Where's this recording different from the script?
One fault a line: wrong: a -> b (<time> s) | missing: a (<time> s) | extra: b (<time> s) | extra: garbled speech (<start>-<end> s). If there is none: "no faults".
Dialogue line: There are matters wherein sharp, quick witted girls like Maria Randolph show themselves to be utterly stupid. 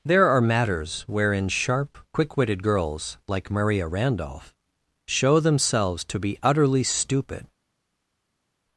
no faults